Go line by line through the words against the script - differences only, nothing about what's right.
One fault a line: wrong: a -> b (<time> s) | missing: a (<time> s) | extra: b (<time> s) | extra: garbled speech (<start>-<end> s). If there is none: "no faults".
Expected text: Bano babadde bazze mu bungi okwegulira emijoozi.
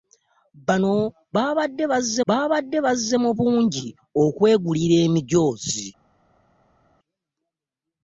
extra: babadde bazze (2.3 s)